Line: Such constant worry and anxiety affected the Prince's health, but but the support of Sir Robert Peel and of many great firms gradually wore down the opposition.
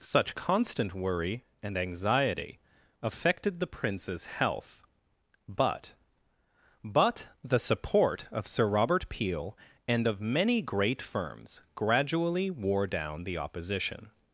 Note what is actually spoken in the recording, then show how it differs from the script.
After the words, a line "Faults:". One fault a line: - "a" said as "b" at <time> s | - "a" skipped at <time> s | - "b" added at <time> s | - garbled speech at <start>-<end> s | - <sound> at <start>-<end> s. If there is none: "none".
Such constant worry and anxiety affected the Prince's health, but but the support of Sir Robert Peel and of many great firms gradually wore down the opposition.
Faults:
none